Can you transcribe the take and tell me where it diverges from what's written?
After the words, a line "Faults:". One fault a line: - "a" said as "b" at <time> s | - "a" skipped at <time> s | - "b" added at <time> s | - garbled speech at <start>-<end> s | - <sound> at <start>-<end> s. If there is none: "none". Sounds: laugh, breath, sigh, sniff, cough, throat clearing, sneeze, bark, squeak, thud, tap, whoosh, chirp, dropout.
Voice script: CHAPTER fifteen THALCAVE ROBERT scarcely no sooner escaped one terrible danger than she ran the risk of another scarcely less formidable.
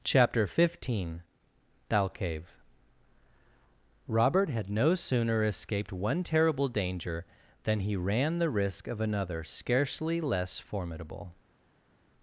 CHAPTER fifteen THALCAVE ROBERT had no sooner escaped one terrible danger than he ran the risk of another scarcely less formidable.
Faults:
- "scarcely" said as "had" at 4.5 s
- "she" said as "he" at 7.8 s